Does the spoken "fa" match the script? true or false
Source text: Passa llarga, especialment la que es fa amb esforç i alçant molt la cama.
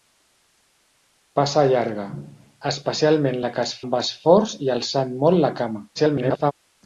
false